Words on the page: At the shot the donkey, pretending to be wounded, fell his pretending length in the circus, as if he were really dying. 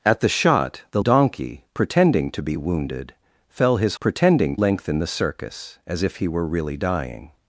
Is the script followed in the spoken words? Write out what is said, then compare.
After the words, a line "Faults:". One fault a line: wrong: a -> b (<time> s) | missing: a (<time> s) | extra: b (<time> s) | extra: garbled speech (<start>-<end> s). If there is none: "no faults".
At the shot the donkey, pretending to be wounded, fell his pretending length in the circus, as if he were really dying.
Faults:
no faults